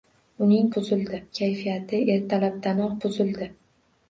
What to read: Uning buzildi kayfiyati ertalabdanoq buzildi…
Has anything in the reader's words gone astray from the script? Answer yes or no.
no